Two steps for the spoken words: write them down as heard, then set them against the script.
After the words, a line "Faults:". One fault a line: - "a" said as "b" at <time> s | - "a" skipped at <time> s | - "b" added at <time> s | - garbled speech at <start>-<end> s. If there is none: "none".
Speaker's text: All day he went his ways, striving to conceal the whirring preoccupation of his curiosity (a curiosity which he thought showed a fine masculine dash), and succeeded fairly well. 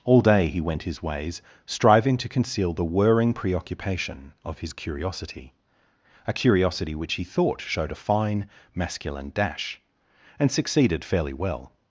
All day he went his ways, striving to conceal the whirring preoccupation of his curiosity (a curiosity which he thought showed a fine masculine dash), and succeeded fairly well.
Faults:
none